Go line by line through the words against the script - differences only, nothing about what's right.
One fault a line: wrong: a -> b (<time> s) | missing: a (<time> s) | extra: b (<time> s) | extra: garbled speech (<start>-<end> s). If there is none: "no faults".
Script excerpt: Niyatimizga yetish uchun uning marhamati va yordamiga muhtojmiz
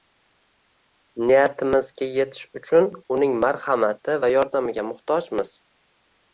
no faults